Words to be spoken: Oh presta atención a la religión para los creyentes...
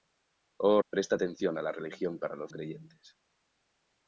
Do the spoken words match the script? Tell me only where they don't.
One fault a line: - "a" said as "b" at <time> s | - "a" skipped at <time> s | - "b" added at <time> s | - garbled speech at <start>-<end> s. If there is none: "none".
none